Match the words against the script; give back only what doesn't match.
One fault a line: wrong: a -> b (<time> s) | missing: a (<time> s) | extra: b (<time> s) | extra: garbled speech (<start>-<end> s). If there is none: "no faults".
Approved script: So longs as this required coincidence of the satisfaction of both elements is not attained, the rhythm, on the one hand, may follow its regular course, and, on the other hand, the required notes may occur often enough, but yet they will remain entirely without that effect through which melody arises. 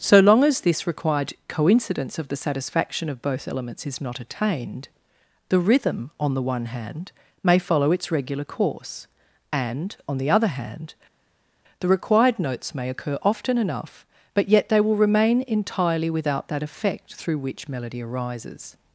wrong: longs -> long (0.2 s)